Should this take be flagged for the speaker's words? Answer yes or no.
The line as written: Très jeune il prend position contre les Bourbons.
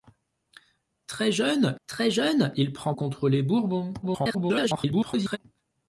yes